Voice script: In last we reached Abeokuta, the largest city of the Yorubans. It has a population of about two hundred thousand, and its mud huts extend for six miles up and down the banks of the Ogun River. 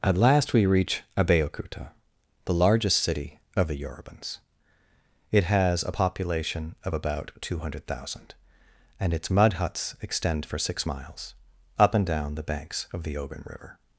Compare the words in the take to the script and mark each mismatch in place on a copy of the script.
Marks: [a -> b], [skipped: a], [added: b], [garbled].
[In -> At] last we [reached -> reach] Abeokuta, the largest city of the Yorubans. It has a population of about two hundred thousand, and its mud huts extend for six miles up and down the banks of the Ogun River.